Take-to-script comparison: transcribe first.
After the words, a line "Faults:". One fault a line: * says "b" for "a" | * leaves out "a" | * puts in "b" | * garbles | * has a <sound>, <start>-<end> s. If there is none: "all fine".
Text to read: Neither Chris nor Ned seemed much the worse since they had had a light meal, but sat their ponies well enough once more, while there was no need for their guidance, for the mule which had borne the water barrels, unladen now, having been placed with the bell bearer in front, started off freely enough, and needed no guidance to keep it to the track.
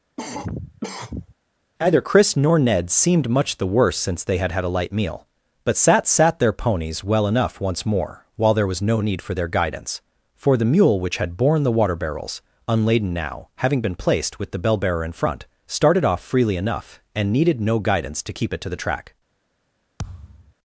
Neither Chris nor Ned seemed much the worse since they had had a light meal, but sat sat their ponies well enough once more, while there was no need for their guidance, for the mule which had borne the water barrels, unladen now, having been placed with the bell bearer in front, started off freely enough, and needed no guidance to keep it to the track.
Faults:
* has a cough, 0.2-1.3 s
* puts in "sat"
* has a thud, 20.0-20.5 s